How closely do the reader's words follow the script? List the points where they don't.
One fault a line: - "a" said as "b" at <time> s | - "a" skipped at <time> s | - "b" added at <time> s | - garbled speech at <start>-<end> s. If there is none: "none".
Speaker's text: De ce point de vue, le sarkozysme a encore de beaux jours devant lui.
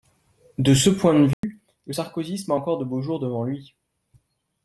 none